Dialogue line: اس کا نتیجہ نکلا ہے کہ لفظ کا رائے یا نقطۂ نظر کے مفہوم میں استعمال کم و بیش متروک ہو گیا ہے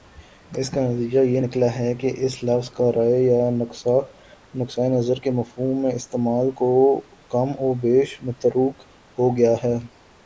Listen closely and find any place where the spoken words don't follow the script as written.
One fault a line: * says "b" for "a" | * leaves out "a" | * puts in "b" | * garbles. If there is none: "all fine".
* puts in "یہ"
* puts in "اس"